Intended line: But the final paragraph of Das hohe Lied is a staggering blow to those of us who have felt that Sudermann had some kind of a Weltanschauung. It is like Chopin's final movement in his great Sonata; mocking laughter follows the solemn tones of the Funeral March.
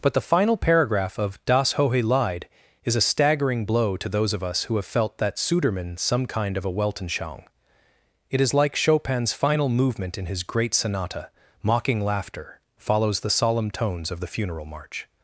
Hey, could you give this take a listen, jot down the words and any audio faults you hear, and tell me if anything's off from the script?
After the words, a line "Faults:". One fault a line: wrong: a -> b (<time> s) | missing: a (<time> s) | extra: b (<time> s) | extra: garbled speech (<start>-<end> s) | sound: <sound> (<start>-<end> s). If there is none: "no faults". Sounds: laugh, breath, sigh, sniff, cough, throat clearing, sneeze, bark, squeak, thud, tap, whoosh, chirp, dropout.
But the final paragraph of Das hohe Lied is a staggering blow to those of us who have felt that Sudermann some kind of a Weltanschauung. It is like Chopin's final movement in his great Sonata; mocking laughter follows the solemn tones of the Funeral March.
Faults:
missing: had (6.0 s)